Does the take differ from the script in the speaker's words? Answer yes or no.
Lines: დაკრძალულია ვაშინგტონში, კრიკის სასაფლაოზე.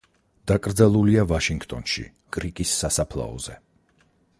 no